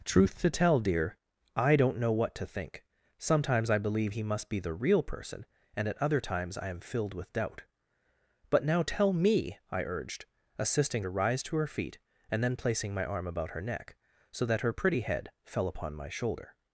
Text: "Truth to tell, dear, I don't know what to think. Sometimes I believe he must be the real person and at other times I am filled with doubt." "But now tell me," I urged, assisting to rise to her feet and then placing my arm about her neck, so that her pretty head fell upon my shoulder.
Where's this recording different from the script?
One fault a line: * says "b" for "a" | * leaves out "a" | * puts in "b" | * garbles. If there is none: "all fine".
all fine